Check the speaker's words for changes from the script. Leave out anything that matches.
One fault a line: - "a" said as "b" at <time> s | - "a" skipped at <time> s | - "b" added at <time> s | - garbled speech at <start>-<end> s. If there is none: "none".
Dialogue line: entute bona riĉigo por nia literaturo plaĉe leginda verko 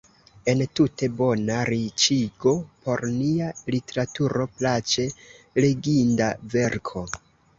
none